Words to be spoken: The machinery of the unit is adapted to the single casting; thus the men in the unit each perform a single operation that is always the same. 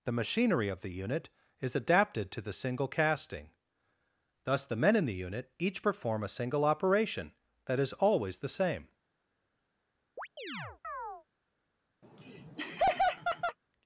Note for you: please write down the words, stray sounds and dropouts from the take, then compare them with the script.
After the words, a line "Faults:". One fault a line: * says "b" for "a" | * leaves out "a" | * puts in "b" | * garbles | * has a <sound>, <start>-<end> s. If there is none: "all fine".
The machinery of the unit is adapted to the single casting; thus the men in the unit each perform a single operation that is always the same.
Faults:
* has a chirp, 10.2-11.3 s
* has a laugh, 12.0-13.6 s